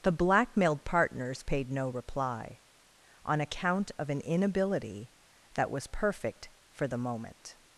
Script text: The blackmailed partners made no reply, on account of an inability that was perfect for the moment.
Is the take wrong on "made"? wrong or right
wrong